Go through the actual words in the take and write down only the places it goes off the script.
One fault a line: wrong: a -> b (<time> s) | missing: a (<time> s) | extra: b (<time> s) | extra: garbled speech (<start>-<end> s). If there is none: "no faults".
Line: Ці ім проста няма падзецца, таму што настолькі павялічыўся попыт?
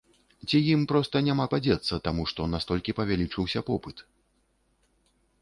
no faults